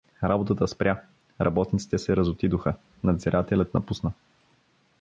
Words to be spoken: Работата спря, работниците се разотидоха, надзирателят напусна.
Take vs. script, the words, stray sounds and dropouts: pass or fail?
pass